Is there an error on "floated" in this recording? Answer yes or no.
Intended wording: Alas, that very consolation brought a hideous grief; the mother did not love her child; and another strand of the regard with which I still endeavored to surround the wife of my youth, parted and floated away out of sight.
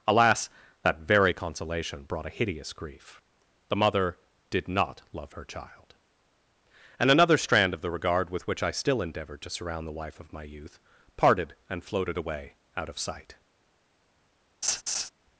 no